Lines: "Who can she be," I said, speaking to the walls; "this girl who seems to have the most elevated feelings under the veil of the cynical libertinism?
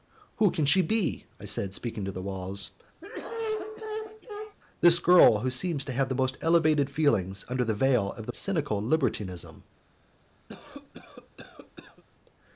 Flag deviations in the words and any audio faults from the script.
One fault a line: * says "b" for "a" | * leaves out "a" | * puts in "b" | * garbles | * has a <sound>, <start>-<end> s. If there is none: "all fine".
* has a cough, 3.0-4.6 s
* has a cough, 10.5-12.0 s